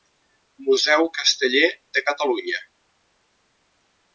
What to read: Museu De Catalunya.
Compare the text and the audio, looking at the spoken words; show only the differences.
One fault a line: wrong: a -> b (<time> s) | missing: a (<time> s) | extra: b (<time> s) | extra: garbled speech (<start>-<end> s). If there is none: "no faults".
extra: Casteller (1.2 s)